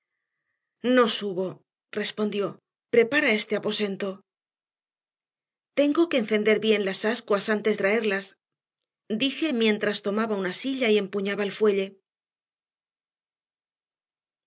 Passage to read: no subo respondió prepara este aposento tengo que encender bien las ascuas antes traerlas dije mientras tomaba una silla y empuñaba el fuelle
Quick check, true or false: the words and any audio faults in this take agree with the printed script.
true